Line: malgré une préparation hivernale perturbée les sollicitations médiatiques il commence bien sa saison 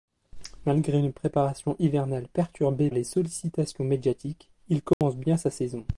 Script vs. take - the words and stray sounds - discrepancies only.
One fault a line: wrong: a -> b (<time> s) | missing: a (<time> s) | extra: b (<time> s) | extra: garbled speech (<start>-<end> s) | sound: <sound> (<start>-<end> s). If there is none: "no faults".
sound: dropout (4.9-5.0 s)